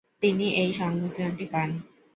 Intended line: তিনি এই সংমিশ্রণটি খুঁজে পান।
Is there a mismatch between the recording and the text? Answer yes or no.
yes